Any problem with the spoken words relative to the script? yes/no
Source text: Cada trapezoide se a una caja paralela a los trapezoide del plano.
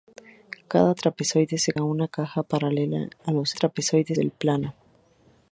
no